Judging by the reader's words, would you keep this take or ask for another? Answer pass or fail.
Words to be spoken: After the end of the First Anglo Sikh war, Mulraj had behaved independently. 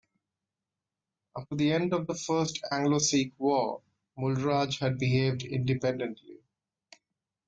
pass